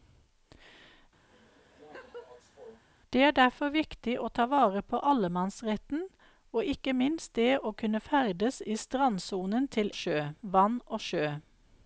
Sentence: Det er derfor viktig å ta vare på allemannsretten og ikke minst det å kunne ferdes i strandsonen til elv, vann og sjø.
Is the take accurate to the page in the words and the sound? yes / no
no